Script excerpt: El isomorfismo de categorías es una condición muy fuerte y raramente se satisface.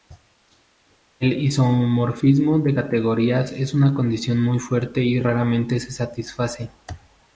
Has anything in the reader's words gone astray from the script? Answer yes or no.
no